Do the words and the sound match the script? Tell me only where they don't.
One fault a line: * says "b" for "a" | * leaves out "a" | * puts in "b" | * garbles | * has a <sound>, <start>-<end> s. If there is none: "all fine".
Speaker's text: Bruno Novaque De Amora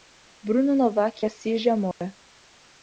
* puts in "Assis"
* has a dropout, 1.9-2.0 s